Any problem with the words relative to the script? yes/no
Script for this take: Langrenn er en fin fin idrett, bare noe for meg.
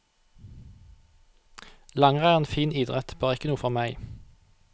yes